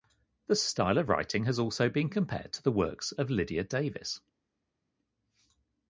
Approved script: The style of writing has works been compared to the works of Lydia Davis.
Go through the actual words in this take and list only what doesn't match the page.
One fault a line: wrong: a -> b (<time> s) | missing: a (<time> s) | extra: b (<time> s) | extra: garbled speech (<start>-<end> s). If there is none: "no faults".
wrong: works -> also (1.6 s)